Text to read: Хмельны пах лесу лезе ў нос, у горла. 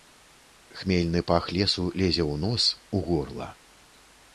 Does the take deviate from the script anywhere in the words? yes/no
no